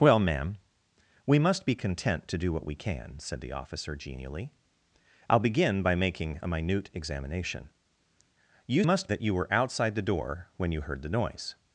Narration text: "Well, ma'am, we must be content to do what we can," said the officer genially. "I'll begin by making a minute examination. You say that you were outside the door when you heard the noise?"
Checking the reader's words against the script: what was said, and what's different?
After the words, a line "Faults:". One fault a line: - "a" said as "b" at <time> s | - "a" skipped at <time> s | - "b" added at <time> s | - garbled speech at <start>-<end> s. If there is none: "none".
"Well, ma'am, we must be content to do what we can," said the officer genially. "I'll begin by making a minute examination. You must that you were outside the door when you heard the noise?"
Faults:
- "say" said as "must" at 8.8 s